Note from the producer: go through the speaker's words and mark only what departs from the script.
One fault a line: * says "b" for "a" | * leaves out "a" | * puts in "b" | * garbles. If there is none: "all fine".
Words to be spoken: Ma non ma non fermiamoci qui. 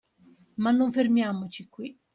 * leaves out "ma non"